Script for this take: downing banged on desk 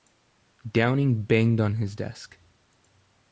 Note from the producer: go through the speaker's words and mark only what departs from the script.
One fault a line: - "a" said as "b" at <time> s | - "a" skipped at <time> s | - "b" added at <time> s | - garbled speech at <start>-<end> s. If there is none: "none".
- "his" added at 1.8 s